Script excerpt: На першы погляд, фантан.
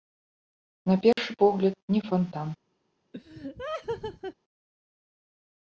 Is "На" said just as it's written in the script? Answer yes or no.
yes